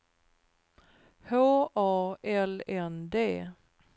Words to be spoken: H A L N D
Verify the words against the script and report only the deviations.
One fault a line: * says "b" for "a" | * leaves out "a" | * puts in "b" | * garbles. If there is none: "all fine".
all fine